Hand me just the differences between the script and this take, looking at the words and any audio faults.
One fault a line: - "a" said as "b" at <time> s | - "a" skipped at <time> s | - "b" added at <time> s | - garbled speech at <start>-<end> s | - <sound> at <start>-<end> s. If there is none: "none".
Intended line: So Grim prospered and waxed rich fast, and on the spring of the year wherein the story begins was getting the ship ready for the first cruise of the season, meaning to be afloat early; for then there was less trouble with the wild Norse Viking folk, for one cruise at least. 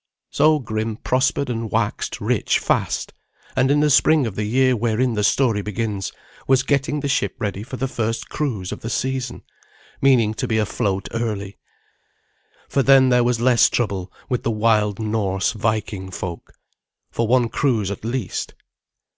- "on" said as "in" at 3.7 s